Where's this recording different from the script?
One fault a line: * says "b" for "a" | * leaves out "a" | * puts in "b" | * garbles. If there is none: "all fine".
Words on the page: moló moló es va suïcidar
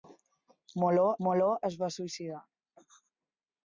all fine